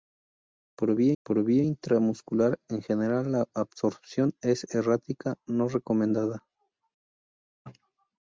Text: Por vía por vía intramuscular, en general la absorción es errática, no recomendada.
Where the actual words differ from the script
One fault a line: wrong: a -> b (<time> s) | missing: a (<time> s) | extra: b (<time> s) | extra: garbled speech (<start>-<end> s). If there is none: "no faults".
no faults